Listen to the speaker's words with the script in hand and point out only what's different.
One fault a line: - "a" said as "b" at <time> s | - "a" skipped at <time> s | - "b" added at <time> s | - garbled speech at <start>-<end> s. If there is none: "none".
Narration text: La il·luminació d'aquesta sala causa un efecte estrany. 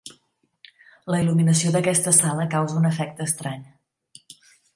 none